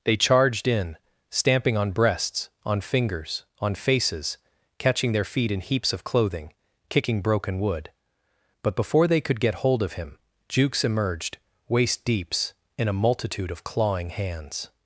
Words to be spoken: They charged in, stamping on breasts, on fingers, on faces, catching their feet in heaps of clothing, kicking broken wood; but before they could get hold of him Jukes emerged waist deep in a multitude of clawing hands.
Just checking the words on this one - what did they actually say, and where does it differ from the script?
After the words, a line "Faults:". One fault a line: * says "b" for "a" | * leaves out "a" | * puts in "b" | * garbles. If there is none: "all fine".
They charged in, stamping on breasts, on fingers, on faces, catching their feet in heaps of clothing, kicking broken wood; but before they could get hold of him Jukes emerged waist deeps in a multitude of clawing hands.
Faults:
* says "deeps" for "deep"